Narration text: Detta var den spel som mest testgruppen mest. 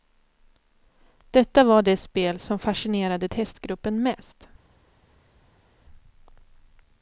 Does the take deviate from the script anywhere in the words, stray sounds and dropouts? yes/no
yes